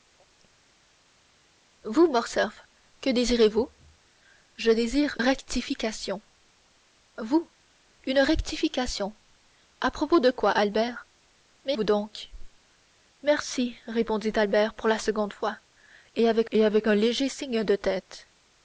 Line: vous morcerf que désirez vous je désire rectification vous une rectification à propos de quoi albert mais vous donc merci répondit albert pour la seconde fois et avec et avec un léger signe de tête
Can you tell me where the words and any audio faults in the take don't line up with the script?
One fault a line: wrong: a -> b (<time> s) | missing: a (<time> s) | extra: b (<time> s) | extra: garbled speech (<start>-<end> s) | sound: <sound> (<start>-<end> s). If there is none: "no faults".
no faults